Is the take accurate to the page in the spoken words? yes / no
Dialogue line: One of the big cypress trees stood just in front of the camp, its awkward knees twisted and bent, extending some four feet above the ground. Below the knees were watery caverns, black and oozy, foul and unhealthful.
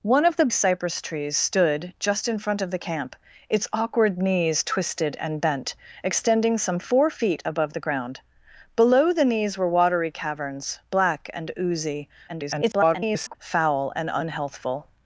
no